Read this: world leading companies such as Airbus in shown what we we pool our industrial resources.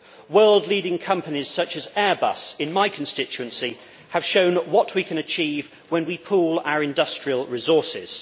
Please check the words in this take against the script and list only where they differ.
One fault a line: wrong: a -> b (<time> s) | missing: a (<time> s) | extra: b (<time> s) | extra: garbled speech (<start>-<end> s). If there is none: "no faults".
extra: my constituency have (2.7 s)
extra: can achieve when (5.0 s)